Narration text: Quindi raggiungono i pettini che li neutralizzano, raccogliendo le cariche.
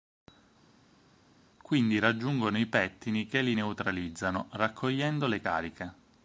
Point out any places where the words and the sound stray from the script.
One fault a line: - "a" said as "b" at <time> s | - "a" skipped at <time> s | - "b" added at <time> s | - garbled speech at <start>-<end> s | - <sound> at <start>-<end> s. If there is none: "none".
none